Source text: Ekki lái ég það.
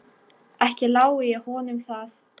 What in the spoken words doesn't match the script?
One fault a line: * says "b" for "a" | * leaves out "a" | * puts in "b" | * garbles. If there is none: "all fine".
* puts in "honum"